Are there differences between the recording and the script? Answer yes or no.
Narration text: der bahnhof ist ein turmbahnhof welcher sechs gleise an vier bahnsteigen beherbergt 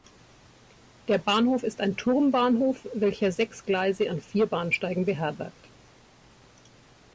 no